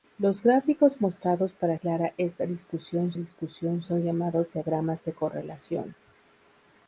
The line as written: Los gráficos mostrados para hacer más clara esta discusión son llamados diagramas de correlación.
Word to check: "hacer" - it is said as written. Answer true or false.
false